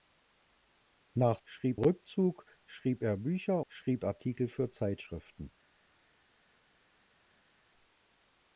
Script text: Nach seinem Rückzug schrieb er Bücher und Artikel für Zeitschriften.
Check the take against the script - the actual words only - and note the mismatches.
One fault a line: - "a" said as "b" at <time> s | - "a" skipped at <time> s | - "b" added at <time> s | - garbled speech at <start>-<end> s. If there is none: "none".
- "seinem" said as "schrieb" at 1.4 s
- "und" said as "schrieb" at 3.7 s